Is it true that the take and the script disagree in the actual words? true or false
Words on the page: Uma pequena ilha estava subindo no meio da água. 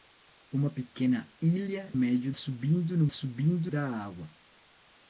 true